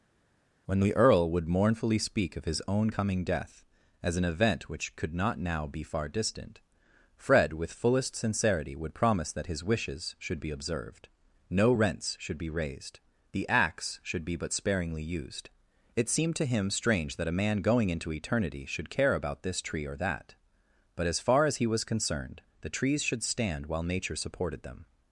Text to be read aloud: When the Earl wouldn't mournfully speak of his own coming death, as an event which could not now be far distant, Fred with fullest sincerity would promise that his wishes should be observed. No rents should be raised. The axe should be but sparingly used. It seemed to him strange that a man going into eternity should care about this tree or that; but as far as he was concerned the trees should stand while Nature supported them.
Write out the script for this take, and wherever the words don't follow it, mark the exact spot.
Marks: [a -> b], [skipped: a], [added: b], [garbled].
When the Earl [wouldn't -> would] mournfully speak of his own coming death, as an event which could not now be far distant, Fred with fullest sincerity would promise that his wishes should be observed. No rents should be raised. The axe should be but sparingly used. It seemed to him strange that a man going into eternity should care about this tree or that; but as far as he was concerned the trees should stand while Nature supported them.